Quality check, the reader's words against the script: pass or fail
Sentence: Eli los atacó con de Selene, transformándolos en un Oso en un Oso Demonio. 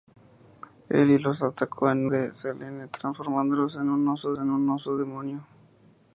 pass